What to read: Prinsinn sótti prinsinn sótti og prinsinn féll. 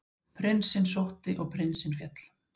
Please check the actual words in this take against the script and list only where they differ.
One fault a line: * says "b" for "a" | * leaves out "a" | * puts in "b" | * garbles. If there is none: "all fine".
* leaves out "prinsinn sótti"